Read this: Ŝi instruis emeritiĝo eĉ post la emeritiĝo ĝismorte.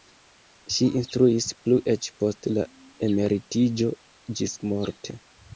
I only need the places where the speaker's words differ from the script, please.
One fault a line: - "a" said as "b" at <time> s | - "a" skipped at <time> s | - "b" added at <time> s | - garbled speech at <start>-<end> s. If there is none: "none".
- "emeritiĝo" said as "plu" at 1.7 s